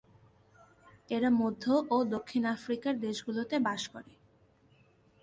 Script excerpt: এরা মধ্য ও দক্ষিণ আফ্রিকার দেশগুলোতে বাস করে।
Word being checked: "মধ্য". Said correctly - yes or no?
yes